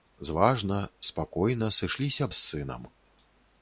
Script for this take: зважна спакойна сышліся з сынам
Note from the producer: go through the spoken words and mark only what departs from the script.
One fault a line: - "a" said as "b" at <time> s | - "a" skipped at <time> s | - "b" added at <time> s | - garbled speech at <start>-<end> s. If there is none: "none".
none